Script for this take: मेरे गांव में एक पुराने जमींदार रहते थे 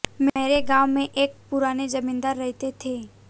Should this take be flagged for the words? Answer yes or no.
no